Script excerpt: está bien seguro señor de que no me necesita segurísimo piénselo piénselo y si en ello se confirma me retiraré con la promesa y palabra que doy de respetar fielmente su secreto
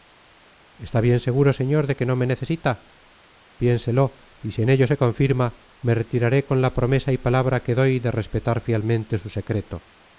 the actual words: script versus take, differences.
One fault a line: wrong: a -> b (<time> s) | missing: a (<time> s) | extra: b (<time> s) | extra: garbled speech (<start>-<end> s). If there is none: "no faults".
missing: segurísimo piénselo (2.7 s)